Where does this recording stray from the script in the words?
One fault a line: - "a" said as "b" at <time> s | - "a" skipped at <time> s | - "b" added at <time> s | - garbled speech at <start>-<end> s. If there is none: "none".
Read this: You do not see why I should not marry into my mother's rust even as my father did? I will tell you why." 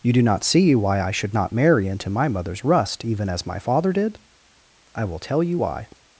none